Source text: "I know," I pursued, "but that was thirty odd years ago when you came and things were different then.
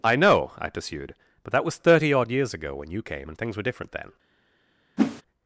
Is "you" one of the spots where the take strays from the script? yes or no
no